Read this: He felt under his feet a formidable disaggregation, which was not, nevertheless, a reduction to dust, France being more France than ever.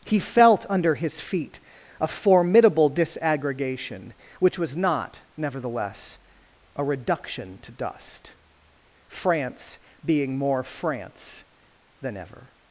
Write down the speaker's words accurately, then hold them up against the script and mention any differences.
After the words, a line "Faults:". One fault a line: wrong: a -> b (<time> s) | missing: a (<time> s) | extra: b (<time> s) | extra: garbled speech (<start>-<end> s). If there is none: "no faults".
He felt under his feet a formidable disaggregation, which was not, nevertheless, a reduction to dust, France being more France than ever.
Faults:
no faults